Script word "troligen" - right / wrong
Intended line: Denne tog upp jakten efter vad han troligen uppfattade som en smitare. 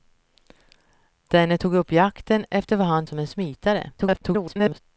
wrong